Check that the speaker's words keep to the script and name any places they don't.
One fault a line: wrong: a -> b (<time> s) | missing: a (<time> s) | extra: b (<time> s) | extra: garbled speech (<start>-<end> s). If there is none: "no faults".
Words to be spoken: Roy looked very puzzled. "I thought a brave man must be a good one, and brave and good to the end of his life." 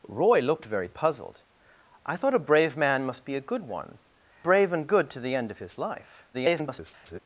missing: and (4.0 s)
extra: garbled speech (6.3-7.2 s)